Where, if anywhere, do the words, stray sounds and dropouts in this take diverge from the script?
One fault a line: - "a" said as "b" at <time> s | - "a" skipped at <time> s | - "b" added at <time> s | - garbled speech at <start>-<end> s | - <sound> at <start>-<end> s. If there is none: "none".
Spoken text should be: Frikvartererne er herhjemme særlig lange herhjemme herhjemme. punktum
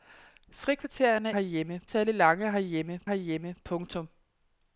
none